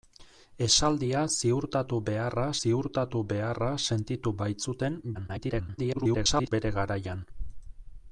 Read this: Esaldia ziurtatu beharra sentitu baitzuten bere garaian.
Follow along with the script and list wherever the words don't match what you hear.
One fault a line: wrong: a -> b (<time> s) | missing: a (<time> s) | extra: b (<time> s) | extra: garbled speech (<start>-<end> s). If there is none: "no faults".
extra: ziurtatu beharra (2.6 s)
extra: garbled speech (5.1-6.5 s)